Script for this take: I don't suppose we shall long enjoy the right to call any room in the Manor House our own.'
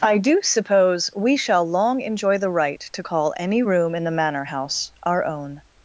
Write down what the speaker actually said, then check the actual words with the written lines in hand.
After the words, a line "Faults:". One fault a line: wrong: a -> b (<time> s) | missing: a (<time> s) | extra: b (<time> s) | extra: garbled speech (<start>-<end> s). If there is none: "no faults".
I do suppose we shall long enjoy the right to call any room in the Manor House our own.'
Faults:
wrong: don't -> do (0.2 s)